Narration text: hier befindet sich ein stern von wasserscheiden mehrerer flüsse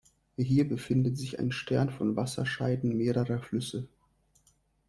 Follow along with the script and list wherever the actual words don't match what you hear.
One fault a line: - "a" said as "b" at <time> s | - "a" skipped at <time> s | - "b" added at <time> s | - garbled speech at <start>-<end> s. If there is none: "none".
none